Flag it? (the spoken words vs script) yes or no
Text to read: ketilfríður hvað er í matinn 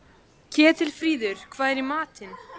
no